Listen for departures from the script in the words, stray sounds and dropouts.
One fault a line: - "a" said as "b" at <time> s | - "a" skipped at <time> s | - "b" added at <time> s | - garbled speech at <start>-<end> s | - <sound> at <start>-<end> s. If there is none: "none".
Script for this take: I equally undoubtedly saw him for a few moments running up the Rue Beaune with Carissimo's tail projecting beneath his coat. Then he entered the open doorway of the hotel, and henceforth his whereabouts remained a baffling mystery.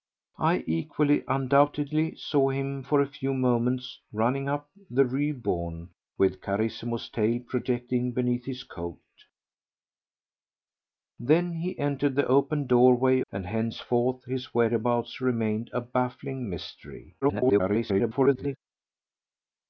- "of the hotel" skipped at 13.2 s
- garbled speech at 17.2-18.6 s